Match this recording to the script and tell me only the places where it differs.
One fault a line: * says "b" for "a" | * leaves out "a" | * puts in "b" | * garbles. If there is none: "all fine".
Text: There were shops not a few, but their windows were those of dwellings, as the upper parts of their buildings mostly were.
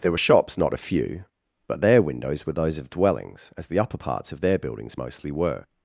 all fine